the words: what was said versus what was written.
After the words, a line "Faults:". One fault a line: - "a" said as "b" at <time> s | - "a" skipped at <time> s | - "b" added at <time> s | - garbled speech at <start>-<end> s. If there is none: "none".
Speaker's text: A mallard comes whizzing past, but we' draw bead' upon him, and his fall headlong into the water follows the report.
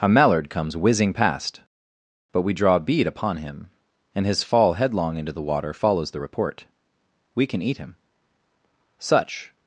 A mallard comes whizzing past, but we' draw bead' upon him, and his fall headlong into the water follows the report. We can eat him. Such
Faults:
- "We can eat him Such" added at 7.3 s